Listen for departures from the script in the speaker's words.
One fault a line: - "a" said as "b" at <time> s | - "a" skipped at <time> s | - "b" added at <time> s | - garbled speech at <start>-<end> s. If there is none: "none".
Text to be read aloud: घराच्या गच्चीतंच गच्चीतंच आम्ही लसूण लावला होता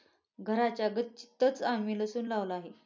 - "गच्चीतंच" skipped at 1.6 s
- "होता" said as "आहे" at 2.5 s